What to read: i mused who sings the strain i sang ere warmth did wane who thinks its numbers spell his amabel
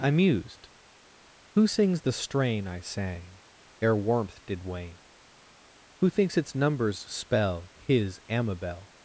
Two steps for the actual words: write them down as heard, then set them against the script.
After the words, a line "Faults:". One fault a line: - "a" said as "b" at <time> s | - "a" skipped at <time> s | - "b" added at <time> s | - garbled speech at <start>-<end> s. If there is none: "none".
i mused who sings the strain i sang ere warmth did wane who thinks its numbers spell his amabel
Faults:
none